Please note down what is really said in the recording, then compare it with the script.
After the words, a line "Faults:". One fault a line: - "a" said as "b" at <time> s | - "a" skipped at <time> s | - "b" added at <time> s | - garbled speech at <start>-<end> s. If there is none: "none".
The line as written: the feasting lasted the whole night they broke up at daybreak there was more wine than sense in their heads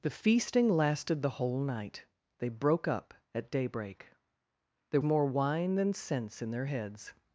the feasting lasted the whole night they broke up at daybreak there more wine than sense in their heads
Faults:
- "was" skipped at 5.0 s